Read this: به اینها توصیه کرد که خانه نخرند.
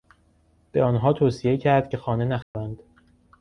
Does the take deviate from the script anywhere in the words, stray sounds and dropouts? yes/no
yes